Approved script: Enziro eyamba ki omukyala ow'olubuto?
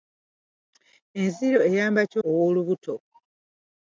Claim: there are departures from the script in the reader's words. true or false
true